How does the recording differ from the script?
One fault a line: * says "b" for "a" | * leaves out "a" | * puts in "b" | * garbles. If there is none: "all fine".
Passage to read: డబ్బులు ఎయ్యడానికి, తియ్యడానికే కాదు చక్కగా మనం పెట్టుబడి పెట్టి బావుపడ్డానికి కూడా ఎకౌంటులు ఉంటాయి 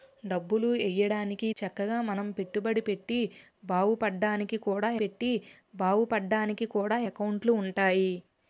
* leaves out "తియ్యడానికే కాదు"
* puts in "పెట్టి బావుపడ్డానికి కూడా"